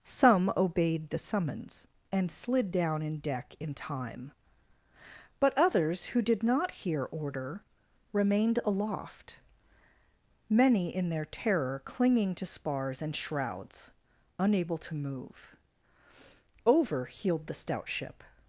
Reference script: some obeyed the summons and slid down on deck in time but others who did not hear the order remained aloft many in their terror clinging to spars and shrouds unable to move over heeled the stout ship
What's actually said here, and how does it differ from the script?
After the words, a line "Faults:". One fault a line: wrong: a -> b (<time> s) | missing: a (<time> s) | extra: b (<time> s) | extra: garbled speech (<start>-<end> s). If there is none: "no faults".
some obeyed the summons and slid down in deck in time but others who did not hear order remained aloft many in their terror clinging to spars and shrouds unable to move over heeled the stout ship
Faults:
wrong: on -> in (3.0 s)
missing: the (7.0 s)